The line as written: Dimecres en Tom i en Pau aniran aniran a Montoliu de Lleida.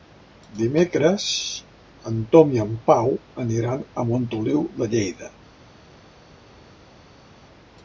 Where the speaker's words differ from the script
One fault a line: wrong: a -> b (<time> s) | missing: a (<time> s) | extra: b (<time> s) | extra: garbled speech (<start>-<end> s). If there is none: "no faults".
missing: aniran (3.9 s)